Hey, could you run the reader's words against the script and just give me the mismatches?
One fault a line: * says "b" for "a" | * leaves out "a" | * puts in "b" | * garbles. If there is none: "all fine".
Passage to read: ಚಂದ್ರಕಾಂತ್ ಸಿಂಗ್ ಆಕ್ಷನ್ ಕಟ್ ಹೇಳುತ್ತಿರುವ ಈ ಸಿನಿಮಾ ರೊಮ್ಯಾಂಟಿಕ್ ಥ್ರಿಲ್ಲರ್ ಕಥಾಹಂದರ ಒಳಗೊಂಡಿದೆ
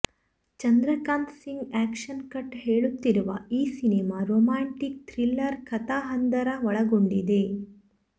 all fine